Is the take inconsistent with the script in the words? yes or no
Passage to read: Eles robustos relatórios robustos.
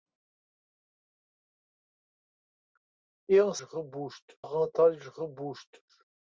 no